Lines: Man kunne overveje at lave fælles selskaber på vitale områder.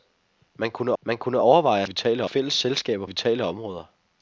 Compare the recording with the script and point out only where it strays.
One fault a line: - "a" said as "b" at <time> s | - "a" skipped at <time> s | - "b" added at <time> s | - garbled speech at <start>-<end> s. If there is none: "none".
- "man kunne" added at 1.0 s
- "lave" said as "vitale" at 1.8 s
- "på" skipped at 3.0 s